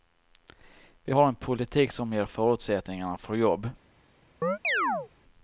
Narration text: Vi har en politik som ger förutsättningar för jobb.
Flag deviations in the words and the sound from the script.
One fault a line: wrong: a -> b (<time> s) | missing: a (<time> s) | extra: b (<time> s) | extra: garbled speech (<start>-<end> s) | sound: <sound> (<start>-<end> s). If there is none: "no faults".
sound: chirp (4.4-5.1 s)